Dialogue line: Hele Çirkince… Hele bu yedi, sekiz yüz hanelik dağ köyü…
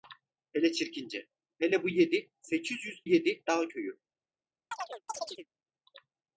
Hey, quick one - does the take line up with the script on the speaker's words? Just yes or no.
no